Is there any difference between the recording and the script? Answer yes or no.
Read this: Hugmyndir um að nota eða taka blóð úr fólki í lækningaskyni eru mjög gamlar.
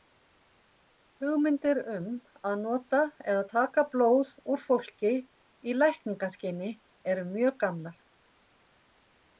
no